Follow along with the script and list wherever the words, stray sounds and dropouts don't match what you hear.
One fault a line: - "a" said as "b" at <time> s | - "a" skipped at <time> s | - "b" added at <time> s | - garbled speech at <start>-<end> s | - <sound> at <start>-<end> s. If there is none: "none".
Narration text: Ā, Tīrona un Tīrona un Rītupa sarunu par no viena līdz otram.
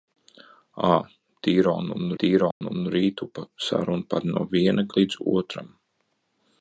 - dropout at 2.5-2.6 s